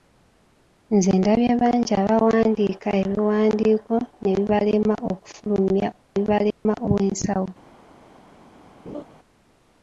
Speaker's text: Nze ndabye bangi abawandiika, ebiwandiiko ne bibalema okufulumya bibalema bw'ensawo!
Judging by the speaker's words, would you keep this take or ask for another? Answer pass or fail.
pass